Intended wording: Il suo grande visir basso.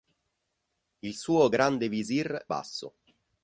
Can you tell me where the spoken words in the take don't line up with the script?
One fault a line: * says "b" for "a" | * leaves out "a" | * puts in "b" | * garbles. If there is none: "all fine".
all fine